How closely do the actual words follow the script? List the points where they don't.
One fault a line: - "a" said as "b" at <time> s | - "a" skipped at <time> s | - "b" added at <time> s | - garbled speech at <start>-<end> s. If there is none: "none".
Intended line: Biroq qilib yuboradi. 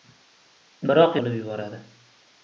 none